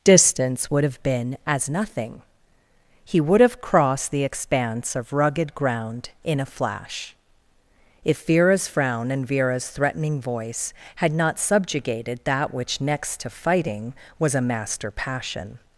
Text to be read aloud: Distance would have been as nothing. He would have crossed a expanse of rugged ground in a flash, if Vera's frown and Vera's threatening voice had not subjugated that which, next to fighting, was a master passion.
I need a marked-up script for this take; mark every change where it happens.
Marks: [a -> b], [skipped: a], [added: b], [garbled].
Distance would have been as nothing. He would have crossed [a -> the] expanse of rugged ground in a flash, if Vera's frown and Vera's threatening voice had not subjugated that which, next to fighting, was a master passion.